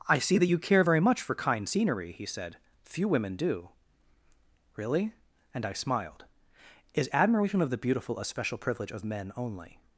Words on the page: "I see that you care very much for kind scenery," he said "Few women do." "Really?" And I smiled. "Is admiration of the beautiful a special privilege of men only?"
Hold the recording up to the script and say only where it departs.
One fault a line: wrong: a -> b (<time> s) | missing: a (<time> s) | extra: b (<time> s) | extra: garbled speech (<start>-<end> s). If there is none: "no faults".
no faults